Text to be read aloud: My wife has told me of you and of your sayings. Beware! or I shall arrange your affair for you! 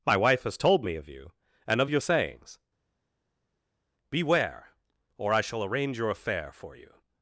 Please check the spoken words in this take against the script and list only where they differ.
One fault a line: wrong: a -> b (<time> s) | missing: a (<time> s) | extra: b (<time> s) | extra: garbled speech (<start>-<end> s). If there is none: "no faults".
no faults